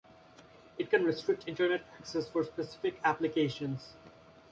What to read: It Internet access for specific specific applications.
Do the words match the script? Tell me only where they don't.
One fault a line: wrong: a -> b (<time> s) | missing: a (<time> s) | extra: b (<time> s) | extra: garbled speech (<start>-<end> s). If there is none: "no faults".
extra: can restrict (0.9 s)
missing: specific (3.0 s)